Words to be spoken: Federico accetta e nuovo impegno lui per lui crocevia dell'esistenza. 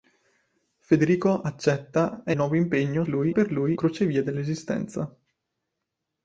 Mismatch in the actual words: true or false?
false